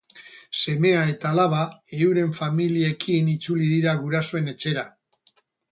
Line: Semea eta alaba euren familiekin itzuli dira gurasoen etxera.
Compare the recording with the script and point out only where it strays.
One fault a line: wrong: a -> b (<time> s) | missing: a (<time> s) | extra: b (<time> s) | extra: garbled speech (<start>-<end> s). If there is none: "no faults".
no faults